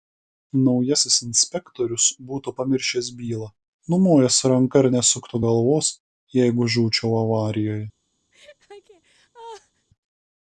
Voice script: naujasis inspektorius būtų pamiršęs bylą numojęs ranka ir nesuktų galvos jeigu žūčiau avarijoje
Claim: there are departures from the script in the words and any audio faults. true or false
true